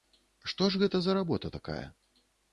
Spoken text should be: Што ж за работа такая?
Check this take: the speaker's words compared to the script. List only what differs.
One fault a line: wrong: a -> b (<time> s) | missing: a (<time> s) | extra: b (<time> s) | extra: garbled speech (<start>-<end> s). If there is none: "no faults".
extra: гэта (0.8 s)